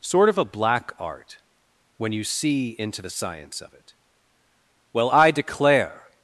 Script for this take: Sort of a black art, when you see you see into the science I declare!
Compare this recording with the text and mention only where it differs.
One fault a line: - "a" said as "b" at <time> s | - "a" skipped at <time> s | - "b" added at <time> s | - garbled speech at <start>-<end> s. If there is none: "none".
- "you see" skipped at 2.7 s
- "of it Well" added at 3.6 s